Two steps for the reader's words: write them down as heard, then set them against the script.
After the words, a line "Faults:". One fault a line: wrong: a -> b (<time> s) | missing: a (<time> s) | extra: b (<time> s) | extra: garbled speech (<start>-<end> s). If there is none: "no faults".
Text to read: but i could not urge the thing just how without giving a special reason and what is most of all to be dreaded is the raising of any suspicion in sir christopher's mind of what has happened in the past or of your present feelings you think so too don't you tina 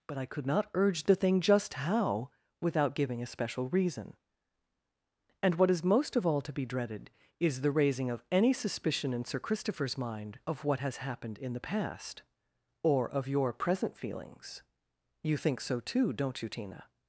but i could not urge the thing just how without giving a special reason and what is most of all to be dreaded is the raising of any suspicion in sir christopher's mind of what has happened in the past or of your present feelings you think so too don't you tina
Faults:
no faults